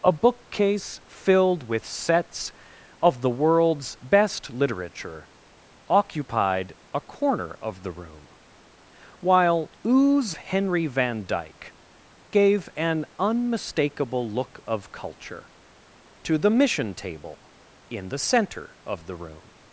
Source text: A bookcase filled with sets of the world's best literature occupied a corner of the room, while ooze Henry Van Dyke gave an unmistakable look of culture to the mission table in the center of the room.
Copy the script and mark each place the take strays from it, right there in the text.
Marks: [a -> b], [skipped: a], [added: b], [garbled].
A bookcase filled with sets of the world's best literature occupied a corner of the room, while ooze Henry Van Dyke gave an unmistakable look of culture to the mission table in the center of the room.